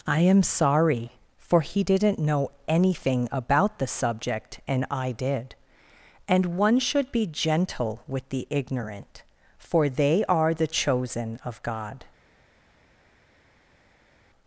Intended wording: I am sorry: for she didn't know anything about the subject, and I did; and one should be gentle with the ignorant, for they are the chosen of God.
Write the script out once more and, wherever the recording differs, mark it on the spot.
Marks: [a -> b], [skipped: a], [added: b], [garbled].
I am sorry: for [she -> he] didn't know anything about the subject, and I did; and one should be gentle with the ignorant, for they are the chosen of God.